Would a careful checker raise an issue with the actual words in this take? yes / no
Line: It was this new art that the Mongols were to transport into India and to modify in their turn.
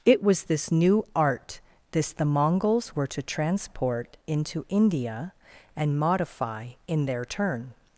yes